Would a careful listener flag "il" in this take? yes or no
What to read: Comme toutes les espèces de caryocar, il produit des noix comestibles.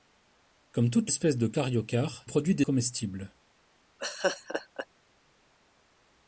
yes